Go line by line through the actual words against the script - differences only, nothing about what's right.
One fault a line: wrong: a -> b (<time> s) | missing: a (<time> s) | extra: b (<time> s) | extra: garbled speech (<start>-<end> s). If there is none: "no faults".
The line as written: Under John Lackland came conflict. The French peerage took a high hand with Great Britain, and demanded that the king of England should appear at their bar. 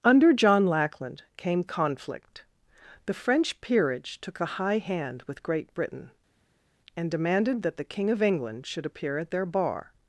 no faults